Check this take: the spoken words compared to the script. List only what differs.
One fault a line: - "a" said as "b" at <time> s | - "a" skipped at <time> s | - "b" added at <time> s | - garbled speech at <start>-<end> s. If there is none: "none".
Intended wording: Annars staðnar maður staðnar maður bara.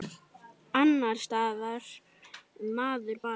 - "staðnar maður" skipped at 3.2 s